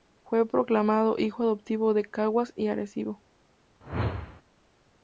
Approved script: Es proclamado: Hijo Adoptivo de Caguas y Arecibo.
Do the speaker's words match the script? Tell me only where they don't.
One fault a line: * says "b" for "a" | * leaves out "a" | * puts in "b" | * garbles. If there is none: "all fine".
* says "Fue" for "Es"